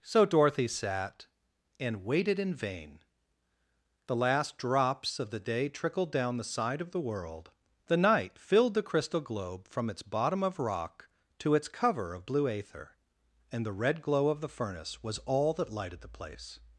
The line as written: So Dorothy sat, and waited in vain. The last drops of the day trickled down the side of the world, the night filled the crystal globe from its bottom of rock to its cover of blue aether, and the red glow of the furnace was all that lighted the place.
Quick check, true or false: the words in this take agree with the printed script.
true